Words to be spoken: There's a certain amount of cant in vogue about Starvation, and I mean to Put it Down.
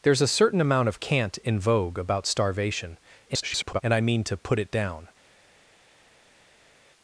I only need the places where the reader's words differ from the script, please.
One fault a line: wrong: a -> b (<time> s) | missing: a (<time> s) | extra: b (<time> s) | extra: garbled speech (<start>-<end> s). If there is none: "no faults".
extra: garbled speech (3.3-3.8 s)